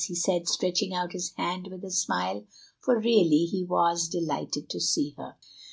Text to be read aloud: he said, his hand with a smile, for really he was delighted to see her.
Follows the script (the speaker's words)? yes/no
no